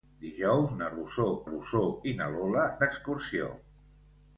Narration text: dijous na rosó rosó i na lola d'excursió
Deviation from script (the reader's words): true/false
false